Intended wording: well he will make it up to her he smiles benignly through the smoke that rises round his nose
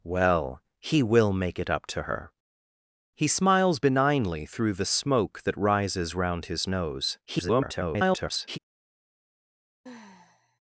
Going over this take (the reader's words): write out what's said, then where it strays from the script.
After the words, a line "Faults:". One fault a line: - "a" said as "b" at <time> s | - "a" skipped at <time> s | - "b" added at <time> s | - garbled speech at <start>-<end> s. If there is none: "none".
well he will make it up to her he smiles benignly through the smoke that rises round his nose [garbled]
Faults:
- garbled speech at 7.3-8.6 s